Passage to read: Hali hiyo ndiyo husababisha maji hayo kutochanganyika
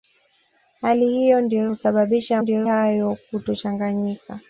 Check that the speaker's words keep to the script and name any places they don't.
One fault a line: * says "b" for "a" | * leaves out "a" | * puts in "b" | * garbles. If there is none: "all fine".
* says "ndiyo" for "maji"